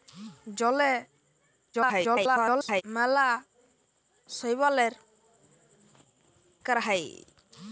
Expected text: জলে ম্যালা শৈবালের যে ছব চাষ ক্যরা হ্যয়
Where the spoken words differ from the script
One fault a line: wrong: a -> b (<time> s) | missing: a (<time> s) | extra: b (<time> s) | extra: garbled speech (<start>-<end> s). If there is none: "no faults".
extra: garbled speech (1.7-2.8 s)
missing: যে ছব চাষ (4.9 s)